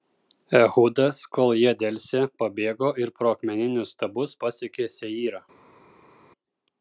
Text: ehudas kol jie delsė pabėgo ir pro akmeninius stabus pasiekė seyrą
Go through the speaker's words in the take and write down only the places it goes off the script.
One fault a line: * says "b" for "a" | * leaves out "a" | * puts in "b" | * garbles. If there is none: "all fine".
all fine